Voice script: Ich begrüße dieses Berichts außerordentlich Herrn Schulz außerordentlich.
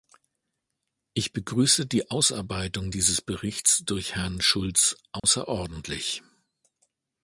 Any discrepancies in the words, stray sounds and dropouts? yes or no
yes